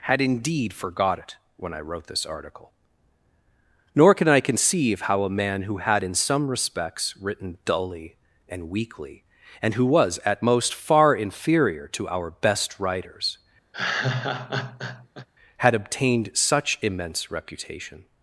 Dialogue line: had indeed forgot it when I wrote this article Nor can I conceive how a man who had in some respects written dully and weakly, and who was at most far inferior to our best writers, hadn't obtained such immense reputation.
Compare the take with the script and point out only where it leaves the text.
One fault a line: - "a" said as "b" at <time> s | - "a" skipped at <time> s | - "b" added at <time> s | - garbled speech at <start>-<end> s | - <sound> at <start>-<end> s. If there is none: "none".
- laugh at 13.7-15.3 s
- "hadn't" said as "had" at 15.6 s